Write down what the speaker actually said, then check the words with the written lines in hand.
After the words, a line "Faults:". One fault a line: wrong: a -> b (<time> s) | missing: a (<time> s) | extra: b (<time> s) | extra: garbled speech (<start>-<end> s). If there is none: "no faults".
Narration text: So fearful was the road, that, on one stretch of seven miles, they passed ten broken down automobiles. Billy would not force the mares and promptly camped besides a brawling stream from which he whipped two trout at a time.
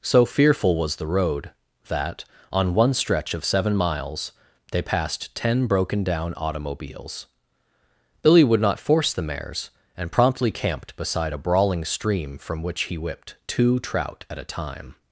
So fearful was the road, that, on one stretch of seven miles, they passed ten broken down automobiles. Billy would not force the mares and promptly camped beside a brawling stream from which he whipped two trout at a time.
Faults:
wrong: besides -> beside (11.0 s)